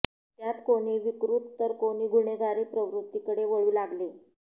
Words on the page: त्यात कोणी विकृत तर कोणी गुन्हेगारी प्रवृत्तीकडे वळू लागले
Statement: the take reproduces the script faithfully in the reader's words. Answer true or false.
true